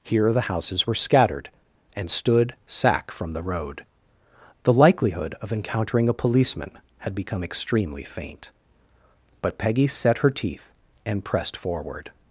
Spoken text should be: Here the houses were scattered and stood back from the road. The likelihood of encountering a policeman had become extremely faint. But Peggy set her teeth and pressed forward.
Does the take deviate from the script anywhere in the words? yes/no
yes